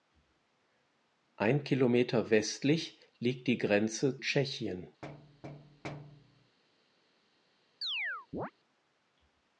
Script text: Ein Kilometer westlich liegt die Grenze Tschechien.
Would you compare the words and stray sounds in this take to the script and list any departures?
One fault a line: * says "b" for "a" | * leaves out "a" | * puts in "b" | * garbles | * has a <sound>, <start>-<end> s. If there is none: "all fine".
* has a thud, 5.0-6.6 s
* has a chirp, 7.8-8.5 s